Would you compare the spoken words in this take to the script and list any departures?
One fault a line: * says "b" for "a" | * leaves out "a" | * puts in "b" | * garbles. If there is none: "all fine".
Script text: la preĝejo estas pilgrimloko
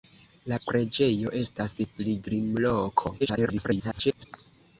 * garbles